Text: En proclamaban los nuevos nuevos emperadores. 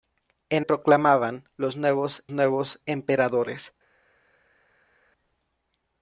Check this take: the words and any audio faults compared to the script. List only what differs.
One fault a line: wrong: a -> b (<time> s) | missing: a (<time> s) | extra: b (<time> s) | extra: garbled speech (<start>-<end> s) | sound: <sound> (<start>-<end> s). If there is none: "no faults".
no faults